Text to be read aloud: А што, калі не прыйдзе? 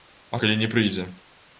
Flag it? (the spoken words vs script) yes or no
yes